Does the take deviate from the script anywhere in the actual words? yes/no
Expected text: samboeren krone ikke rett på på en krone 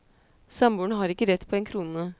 yes